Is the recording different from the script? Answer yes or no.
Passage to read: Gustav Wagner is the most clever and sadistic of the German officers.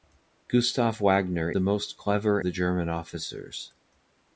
yes